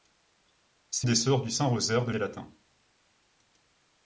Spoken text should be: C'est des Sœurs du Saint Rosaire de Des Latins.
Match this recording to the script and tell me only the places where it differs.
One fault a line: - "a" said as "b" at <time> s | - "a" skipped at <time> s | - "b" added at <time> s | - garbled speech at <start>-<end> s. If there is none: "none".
none